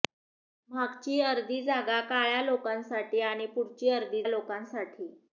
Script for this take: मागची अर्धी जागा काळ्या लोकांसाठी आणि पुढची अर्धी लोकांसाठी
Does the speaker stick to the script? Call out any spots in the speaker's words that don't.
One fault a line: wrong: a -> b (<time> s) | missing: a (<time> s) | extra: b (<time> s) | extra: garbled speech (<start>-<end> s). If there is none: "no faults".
no faults